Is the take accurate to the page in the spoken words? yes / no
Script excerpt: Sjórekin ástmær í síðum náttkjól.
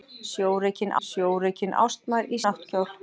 no